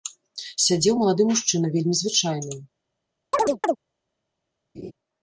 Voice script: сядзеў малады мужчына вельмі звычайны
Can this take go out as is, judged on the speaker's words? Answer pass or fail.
pass